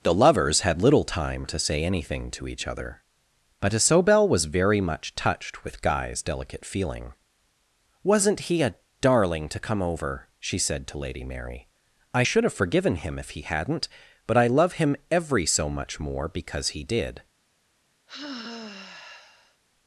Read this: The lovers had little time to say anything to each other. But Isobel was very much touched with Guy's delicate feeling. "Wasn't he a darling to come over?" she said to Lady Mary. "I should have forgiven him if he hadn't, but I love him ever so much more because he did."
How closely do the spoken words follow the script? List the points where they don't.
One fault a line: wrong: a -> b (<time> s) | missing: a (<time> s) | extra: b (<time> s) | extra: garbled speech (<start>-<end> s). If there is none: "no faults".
wrong: ever -> every (15.1 s)